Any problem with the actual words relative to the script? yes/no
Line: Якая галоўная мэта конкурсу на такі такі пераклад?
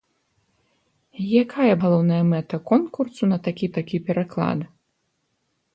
no